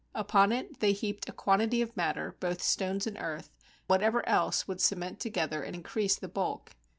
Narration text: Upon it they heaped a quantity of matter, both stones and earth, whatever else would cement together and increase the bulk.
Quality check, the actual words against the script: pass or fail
pass